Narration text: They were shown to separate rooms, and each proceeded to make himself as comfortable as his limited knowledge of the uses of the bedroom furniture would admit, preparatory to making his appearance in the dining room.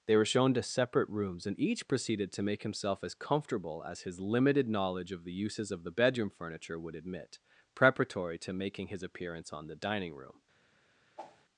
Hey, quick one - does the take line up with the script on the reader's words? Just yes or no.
no